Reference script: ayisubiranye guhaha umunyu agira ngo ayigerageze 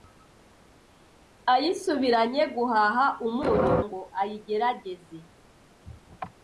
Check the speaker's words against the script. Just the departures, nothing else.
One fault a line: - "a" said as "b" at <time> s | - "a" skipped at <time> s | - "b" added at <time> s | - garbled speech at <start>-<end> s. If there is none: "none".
- "agira" skipped at 3.7 s